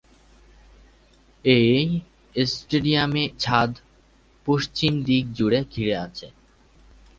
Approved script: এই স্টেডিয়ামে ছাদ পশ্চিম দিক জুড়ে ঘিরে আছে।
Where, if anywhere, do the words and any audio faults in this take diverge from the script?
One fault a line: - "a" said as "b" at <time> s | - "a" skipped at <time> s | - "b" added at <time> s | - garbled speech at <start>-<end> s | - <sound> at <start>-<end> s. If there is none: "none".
none